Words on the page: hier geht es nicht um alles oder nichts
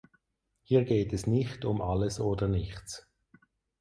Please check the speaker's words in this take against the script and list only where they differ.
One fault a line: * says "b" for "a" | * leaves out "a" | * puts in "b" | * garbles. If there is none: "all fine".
all fine